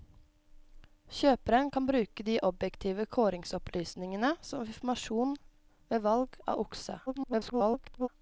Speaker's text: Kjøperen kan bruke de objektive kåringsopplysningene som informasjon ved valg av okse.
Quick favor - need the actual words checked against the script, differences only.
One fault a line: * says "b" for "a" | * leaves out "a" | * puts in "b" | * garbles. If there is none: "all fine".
* garbles